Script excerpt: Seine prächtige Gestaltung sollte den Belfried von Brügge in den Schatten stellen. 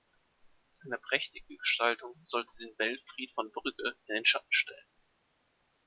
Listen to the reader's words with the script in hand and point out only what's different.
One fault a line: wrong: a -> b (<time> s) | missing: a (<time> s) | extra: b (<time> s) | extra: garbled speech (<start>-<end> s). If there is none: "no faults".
no faults